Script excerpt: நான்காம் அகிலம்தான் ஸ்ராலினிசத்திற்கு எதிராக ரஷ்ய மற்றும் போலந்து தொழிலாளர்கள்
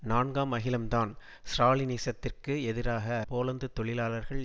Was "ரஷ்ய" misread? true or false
true